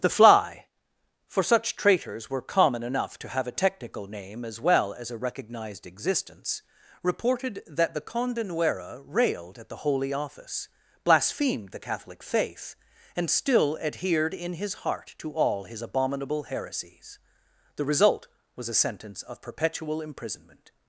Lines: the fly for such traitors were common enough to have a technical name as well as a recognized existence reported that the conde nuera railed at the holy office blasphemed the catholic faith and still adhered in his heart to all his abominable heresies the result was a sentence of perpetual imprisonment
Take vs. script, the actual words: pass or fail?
pass